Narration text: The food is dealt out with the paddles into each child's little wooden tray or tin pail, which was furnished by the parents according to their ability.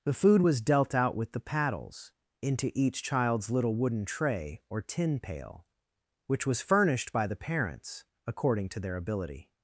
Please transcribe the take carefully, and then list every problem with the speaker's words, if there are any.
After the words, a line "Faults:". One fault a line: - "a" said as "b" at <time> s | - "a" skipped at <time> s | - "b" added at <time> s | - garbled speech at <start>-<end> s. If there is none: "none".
The food was dealt out with the paddles into each child's little wooden tray or tin pail, which was furnished by the parents according to their ability.
Faults:
- "is" said as "was" at 0.4 s